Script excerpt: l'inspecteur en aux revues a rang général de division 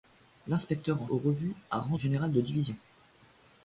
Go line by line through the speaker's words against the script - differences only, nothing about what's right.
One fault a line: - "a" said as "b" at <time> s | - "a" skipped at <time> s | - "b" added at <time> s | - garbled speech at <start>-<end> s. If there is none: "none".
none